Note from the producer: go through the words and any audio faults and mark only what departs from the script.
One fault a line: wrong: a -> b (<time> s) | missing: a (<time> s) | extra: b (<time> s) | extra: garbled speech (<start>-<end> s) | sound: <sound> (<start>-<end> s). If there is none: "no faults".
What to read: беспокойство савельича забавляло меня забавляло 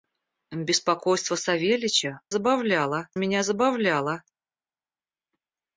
no faults